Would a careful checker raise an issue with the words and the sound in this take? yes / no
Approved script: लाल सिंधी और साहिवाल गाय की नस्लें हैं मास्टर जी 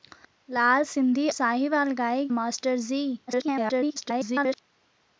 yes